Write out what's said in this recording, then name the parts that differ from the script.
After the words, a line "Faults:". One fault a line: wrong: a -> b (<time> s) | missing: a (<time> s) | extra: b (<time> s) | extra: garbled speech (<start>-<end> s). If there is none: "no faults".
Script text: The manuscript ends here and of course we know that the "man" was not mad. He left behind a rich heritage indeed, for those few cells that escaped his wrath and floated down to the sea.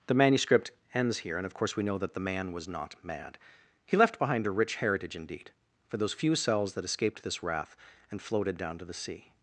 The manuscript ends here and of course we know that the "man" was not mad. He left behind a rich heritage indeed, for those few cells that escaped this wrath and floated down to the sea.
Faults:
wrong: his -> this (7.2 s)